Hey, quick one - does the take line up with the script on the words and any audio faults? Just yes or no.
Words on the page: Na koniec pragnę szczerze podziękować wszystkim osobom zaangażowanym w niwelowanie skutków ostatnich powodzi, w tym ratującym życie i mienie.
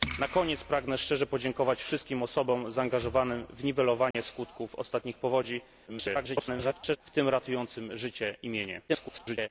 no